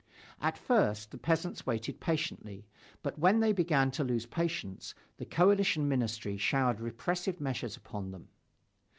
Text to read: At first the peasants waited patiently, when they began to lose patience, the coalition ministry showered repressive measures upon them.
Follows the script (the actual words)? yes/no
no